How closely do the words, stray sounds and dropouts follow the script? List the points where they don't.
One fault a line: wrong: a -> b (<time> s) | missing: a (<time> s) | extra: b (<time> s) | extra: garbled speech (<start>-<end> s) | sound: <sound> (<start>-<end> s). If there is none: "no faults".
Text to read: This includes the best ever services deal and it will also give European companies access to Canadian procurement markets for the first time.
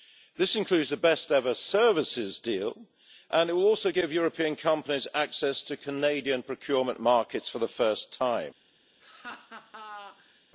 sound: laugh (9.0-10.4 s)